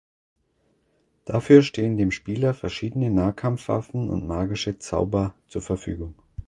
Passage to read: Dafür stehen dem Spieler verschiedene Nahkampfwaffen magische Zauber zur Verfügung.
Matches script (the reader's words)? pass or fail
fail